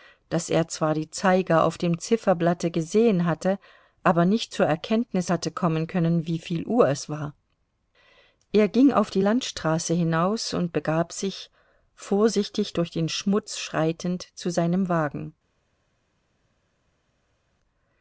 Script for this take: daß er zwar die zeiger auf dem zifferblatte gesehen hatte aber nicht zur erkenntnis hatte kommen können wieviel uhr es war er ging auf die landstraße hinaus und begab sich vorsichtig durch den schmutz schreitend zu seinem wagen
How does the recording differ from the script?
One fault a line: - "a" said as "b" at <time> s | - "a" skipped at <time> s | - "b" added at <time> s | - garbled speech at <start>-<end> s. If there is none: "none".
none